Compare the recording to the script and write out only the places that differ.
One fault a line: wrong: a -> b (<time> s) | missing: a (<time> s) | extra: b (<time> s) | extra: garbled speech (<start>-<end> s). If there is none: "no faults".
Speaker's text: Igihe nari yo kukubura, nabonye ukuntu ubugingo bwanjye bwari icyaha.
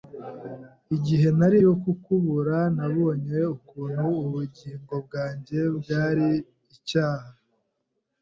no faults